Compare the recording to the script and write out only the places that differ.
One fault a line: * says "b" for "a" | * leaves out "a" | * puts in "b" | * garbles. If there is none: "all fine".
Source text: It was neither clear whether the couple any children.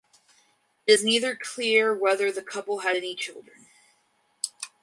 * says "is" for "was"
* puts in "had"